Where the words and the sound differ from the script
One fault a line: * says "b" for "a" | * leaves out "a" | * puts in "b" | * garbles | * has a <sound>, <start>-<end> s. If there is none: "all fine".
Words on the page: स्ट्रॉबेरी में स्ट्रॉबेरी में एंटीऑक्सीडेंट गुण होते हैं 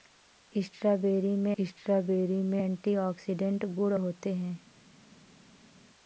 all fine